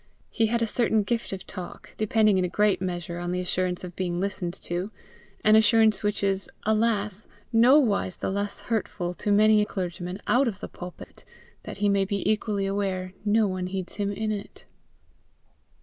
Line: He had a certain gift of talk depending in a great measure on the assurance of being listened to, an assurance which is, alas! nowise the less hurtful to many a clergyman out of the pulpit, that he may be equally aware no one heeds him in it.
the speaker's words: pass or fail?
pass